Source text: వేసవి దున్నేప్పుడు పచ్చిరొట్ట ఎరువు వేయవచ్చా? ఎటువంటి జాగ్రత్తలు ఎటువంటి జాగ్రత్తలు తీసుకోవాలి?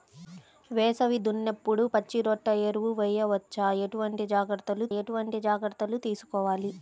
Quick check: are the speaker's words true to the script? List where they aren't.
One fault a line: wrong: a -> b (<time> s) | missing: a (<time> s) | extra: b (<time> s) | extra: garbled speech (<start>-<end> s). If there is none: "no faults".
no faults